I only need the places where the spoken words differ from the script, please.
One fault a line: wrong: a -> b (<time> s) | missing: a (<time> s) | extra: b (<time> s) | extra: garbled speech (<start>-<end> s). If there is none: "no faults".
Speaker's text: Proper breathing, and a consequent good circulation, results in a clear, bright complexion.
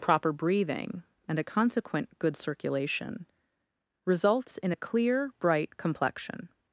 no faults